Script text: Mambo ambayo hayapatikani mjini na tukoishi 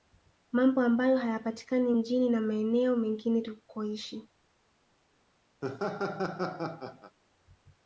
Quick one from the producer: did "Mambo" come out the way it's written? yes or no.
yes